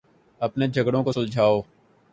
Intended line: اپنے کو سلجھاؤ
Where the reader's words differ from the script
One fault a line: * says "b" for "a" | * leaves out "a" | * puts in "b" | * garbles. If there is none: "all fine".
* puts in "جھگڑوں"